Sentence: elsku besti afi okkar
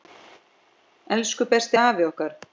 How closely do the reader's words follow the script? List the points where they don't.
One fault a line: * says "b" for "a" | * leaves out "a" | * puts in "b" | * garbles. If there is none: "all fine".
all fine